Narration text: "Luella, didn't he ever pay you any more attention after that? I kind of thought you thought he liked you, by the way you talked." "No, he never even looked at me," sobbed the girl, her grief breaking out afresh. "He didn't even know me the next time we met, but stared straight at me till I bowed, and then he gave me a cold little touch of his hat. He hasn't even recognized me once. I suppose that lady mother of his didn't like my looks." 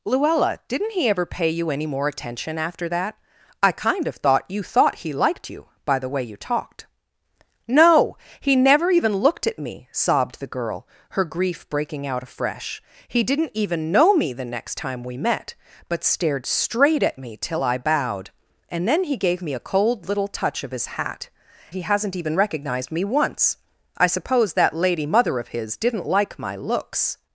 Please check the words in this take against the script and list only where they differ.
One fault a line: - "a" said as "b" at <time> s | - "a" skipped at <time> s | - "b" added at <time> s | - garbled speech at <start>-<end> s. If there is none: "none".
none